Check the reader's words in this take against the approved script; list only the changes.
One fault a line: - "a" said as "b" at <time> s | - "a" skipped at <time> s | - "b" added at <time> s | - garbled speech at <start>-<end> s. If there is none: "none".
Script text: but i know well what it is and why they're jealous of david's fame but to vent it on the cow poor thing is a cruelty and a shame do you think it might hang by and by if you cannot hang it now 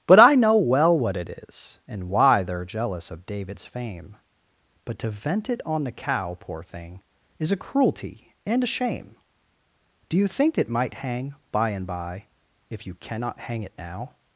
none